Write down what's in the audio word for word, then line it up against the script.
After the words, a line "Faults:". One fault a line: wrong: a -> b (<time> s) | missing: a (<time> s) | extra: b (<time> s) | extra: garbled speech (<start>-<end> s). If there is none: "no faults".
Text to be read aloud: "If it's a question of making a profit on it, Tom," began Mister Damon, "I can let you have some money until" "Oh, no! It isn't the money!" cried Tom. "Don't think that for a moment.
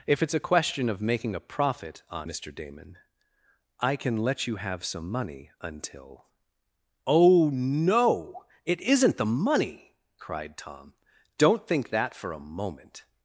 "If it's a question of making a profit on Mister Damon, "I can let you have some money until" "Oh, no! It isn't the money!" cried Tom. "Don't think that for a moment.
Faults:
missing: it Tom began (2.3 s)